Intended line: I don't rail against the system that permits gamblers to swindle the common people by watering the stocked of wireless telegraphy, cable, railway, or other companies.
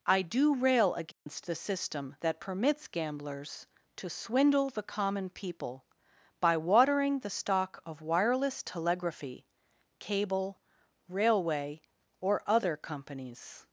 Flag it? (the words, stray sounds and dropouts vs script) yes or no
yes